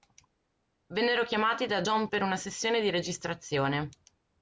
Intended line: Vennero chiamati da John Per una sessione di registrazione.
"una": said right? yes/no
yes